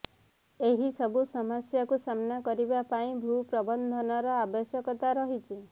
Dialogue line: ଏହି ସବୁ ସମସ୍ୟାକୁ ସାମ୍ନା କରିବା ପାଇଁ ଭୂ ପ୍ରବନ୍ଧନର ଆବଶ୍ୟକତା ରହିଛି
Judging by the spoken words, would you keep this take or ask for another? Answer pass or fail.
pass